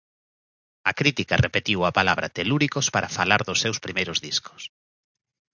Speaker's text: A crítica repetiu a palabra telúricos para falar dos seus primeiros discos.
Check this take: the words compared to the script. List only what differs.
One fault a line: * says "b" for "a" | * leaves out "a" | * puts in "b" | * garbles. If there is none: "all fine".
all fine